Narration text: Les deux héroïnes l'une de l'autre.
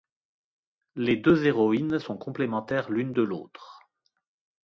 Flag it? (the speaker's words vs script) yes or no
yes